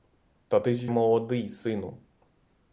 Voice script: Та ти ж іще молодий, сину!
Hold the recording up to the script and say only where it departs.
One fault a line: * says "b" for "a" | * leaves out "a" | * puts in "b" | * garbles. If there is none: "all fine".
* leaves out "іще"